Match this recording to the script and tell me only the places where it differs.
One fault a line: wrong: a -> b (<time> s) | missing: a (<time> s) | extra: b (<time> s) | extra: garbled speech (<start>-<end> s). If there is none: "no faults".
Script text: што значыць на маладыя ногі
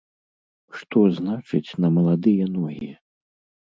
no faults